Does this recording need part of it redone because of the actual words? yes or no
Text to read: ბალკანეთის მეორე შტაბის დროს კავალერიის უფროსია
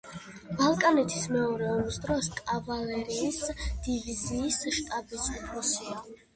yes